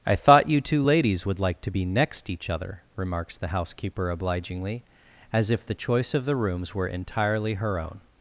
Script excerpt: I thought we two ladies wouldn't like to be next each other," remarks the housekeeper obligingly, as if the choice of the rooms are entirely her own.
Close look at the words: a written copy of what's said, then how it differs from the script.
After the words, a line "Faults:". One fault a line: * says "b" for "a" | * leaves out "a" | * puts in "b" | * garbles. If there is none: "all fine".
I thought you two ladies would like to be next each other," remarks the housekeeper obligingly, as if the choice of the rooms were entirely her own.
Faults:
* says "you" for "we"
* says "would" for "wouldn't"
* says "were" for "are"